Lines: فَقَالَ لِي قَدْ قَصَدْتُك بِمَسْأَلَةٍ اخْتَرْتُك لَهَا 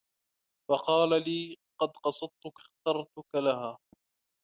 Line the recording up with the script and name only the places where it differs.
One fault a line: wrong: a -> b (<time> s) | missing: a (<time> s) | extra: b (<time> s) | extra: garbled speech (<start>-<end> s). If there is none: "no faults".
missing: بِمَسْأَلَةٍ (2.6 s)